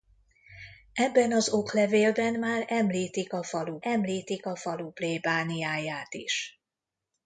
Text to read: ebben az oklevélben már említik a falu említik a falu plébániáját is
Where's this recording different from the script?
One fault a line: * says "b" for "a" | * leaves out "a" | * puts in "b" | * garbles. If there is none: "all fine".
all fine